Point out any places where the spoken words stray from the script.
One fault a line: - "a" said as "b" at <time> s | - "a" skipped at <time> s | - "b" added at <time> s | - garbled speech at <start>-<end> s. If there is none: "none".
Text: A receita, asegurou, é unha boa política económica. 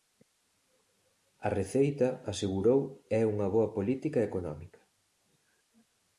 none